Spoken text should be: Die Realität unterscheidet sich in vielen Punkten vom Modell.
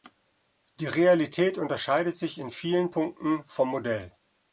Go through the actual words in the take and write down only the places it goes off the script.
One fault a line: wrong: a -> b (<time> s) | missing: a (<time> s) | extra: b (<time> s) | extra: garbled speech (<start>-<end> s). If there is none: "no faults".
no faults